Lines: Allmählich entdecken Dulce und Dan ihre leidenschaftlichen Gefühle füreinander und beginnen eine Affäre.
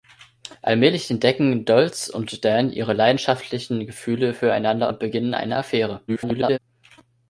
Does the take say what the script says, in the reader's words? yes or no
no